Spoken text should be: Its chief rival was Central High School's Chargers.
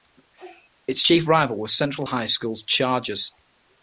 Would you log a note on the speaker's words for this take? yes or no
no